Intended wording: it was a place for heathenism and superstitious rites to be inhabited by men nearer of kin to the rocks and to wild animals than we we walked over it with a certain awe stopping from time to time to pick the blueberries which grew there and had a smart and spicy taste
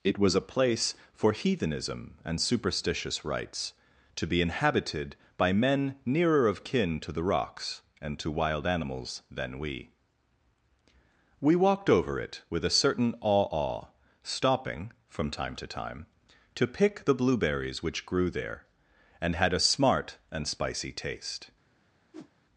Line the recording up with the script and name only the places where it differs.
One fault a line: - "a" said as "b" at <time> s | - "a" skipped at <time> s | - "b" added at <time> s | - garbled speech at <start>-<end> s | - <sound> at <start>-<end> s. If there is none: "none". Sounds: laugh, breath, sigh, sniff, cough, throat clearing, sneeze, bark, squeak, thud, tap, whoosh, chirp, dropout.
- "awe" added at 13.5 s
- whoosh at 22.1-22.3 s